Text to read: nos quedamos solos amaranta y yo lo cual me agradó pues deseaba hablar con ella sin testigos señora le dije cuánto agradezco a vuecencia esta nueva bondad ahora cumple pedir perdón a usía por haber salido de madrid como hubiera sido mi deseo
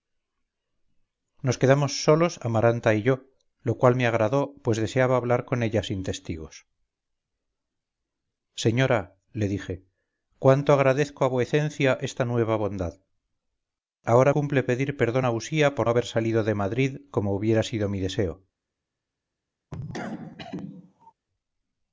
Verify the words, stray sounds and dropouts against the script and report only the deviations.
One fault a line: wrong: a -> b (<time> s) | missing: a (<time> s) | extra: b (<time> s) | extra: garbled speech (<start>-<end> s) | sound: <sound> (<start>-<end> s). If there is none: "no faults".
sound: cough (19.7-21.1 s)